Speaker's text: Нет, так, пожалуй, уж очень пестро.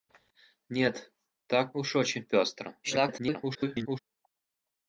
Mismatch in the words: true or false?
true